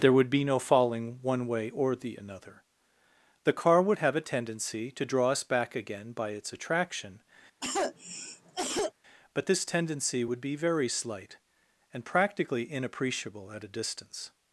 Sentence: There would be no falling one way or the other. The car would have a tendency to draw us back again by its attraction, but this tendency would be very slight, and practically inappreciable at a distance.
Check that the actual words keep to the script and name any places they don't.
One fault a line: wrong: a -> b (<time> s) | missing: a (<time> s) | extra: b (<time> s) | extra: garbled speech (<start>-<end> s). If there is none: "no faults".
wrong: other -> another (2.1 s)